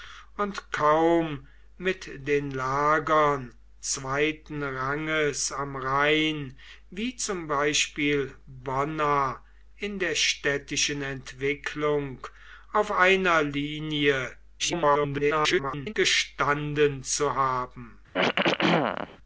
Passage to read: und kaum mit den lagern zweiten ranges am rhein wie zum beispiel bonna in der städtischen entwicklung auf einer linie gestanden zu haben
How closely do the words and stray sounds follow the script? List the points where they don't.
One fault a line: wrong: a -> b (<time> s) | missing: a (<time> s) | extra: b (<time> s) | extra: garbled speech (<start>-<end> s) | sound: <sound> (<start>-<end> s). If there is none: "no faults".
extra: garbled speech (14.6-15.9 s)
sound: throat clearing (18.1-19.2 s)